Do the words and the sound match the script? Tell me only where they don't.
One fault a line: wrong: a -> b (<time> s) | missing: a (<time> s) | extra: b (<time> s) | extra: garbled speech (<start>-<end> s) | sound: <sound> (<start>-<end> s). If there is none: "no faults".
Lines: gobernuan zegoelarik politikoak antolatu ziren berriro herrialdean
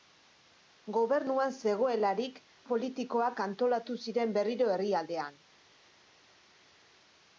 no faults